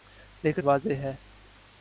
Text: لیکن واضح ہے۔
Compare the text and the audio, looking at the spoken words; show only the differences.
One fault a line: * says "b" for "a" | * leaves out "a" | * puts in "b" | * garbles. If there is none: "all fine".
all fine